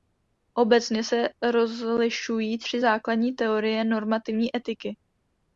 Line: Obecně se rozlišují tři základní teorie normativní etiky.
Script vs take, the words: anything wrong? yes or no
no